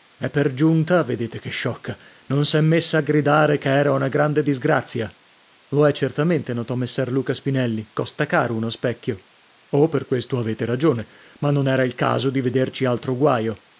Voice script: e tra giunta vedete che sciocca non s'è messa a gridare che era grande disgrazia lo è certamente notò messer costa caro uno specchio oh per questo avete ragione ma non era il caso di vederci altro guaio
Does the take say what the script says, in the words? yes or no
no